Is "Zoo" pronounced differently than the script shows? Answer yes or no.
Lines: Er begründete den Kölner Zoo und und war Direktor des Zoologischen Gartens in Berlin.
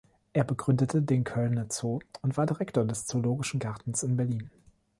no